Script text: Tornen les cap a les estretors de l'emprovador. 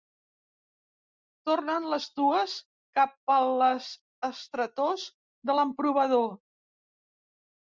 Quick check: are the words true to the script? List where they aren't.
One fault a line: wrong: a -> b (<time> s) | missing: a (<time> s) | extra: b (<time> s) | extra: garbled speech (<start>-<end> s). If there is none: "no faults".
extra: dues (2.2 s)